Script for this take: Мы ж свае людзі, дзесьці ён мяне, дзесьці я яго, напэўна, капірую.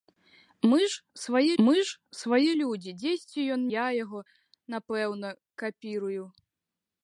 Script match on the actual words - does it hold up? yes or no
no